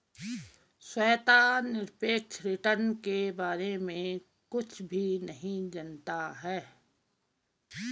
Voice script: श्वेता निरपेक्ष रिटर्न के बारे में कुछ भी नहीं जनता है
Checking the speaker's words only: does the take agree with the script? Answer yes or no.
yes